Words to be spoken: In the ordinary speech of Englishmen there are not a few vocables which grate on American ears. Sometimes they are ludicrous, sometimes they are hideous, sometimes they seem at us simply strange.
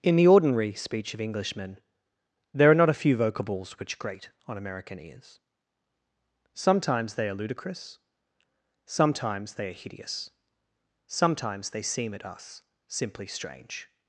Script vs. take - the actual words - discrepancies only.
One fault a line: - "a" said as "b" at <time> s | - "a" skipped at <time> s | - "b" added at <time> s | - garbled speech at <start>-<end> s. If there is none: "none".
none